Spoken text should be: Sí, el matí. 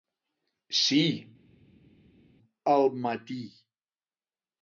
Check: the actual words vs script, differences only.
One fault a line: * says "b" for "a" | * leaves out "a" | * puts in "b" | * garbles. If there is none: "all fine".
all fine